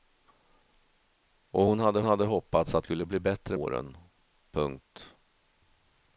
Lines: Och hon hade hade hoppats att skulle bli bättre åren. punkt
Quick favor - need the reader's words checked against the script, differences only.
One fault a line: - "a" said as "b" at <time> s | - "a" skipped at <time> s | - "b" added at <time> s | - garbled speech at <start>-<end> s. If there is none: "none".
none